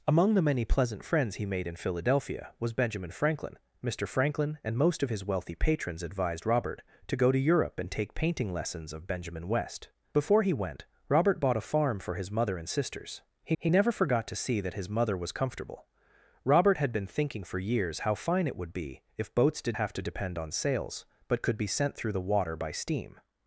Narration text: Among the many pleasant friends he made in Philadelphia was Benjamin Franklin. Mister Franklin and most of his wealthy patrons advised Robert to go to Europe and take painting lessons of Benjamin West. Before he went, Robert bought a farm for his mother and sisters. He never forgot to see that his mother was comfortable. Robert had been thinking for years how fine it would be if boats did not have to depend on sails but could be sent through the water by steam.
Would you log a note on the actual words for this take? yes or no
yes